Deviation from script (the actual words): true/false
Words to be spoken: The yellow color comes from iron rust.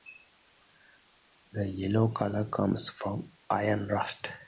false